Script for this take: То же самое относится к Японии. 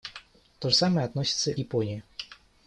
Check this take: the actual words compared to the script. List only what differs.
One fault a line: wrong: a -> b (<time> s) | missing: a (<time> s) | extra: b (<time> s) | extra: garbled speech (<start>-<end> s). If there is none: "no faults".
missing: же (0.7 s)
missing: к (1.5 s)